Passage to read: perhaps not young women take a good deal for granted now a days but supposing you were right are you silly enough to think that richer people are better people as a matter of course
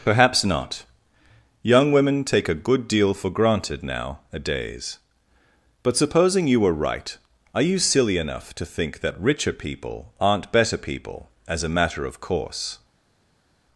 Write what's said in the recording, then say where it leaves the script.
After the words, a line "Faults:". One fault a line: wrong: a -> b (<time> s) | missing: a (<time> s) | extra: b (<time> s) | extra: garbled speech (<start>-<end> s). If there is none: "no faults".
perhaps not young women take a good deal for granted now a days but supposing you were right are you silly enough to think that richer people aren't better people as a matter of course
Faults:
wrong: are -> aren't (10.2 s)